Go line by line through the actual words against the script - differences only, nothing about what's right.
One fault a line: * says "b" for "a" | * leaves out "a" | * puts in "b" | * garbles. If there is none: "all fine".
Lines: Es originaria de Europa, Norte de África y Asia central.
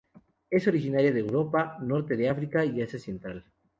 all fine